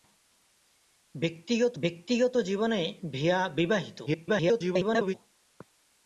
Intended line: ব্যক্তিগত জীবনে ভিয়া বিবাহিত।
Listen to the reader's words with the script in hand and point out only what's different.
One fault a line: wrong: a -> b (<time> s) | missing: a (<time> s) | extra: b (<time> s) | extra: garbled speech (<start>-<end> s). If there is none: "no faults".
extra: ব্যক্তিগত (1.8 s)
extra: garbled speech (4.1-5.2 s)